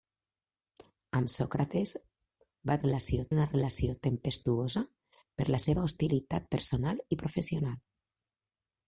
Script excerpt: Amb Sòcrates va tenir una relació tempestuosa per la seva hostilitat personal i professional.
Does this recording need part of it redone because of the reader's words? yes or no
yes